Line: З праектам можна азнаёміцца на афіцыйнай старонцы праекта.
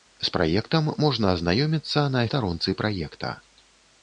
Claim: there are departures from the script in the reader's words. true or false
true